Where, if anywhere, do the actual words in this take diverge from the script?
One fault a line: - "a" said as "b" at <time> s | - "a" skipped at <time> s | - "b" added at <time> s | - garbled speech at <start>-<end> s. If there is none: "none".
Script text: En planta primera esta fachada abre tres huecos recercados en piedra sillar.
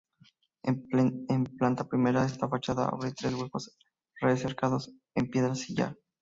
none